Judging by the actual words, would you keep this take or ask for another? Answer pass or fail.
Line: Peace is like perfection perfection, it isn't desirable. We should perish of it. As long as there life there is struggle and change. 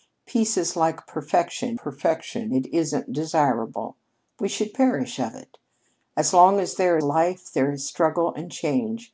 pass